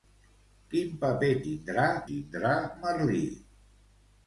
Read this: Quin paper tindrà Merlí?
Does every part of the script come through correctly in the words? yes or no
no